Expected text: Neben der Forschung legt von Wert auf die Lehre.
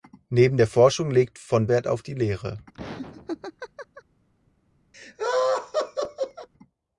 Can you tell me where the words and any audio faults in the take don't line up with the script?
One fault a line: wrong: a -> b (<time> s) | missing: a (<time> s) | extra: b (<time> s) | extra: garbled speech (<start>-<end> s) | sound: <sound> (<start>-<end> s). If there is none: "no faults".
sound: laugh (2.7-4.0 s)
sound: laugh (4.9-6.5 s)